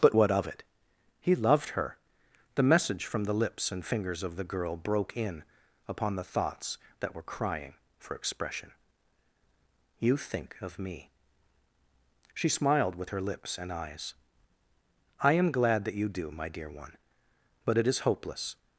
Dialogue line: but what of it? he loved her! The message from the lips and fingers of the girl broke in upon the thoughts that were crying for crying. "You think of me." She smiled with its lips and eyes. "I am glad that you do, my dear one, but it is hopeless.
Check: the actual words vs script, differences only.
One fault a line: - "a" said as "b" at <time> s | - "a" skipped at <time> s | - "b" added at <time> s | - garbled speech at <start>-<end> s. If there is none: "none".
- "crying" said as "expression" at 8.1 s
- "its" said as "her" at 13.1 s